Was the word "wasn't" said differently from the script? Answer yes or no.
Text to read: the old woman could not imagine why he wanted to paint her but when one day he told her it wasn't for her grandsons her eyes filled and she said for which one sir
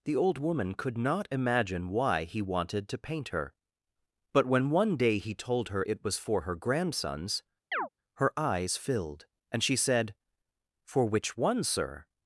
yes